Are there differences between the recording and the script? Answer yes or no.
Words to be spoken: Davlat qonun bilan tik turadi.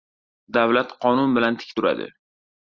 no